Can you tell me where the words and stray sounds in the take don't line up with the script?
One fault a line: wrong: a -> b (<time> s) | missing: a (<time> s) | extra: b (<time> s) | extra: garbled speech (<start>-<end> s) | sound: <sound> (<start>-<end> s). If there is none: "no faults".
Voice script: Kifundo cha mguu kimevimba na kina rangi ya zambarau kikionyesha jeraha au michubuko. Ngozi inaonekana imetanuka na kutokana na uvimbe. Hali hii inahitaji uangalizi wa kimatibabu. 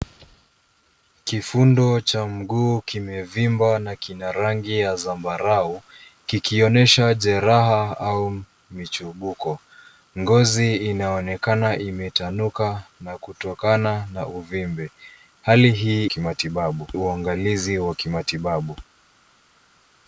wrong: inahitaji -> kimatibabu (16.0 s)